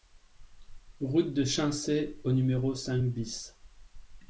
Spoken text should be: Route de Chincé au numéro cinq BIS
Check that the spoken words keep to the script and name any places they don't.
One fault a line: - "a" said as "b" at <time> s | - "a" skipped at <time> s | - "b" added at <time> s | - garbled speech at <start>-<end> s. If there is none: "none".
none